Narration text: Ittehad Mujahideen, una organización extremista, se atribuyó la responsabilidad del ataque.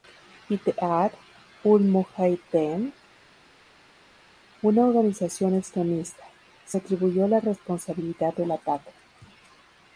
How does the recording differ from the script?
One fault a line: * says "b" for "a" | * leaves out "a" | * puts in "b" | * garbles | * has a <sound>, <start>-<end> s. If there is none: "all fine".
* puts in "ul"